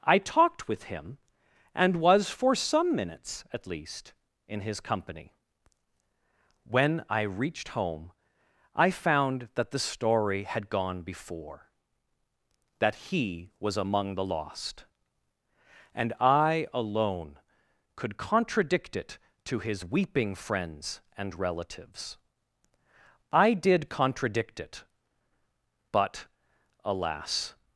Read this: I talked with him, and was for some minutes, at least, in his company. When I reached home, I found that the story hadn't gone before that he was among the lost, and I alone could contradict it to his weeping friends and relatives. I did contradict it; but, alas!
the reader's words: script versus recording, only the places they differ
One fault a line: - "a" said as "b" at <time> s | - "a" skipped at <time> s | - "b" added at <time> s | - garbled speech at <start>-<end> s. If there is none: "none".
- "hadn't" said as "had" at 10.4 s